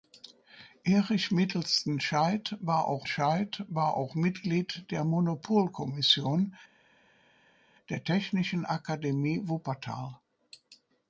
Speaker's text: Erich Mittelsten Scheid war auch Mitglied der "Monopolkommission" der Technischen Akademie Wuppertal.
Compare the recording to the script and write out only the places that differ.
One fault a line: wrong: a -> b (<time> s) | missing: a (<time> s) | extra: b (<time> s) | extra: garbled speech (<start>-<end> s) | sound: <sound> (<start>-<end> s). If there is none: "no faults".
extra: Scheid war auch (3.0 s)